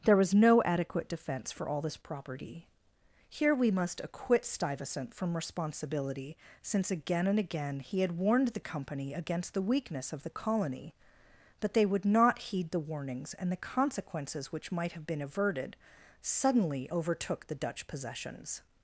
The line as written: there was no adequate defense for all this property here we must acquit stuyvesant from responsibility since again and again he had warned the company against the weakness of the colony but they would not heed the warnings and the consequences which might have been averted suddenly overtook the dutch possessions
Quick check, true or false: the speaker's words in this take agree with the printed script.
true